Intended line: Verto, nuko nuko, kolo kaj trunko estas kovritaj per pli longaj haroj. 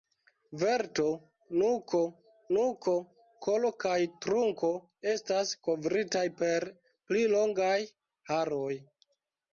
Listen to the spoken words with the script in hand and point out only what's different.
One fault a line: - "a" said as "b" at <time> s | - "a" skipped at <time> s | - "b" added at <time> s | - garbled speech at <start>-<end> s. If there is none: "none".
none